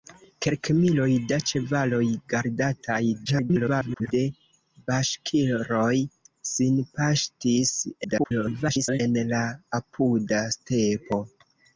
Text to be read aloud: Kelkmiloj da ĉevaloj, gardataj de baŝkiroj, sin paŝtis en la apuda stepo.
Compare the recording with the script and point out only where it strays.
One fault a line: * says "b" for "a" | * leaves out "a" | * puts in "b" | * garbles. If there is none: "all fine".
* garbles
* garbles